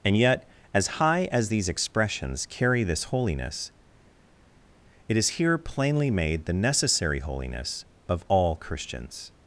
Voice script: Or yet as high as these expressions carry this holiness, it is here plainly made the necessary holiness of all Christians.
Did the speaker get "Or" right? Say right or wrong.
wrong